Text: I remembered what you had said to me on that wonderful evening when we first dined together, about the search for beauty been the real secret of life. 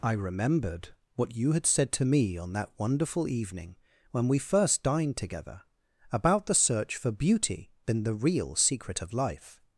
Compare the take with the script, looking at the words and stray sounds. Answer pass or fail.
pass